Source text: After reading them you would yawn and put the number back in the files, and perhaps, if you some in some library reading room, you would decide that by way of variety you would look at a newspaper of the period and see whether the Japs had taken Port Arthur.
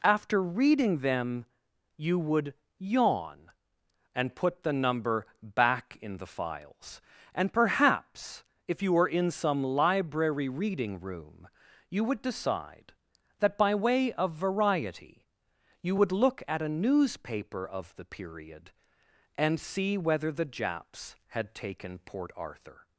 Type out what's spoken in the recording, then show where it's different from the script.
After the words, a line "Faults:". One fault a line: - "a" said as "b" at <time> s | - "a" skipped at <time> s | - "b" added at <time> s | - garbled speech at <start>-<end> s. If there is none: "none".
After reading them you would yawn and put the number back in the files, and perhaps, if you were in some library reading room, you would decide that by way of variety you would look at a newspaper of the period and see whether the Japs had taken Port Arthur.
Faults:
- "some" said as "were" at 8.9 s